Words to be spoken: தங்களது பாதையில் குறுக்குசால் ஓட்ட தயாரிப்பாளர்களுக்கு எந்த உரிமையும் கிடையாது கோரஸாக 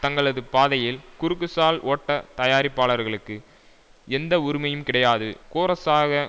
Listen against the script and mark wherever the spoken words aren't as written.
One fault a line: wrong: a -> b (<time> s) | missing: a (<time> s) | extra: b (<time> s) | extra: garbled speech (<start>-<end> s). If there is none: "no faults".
no faults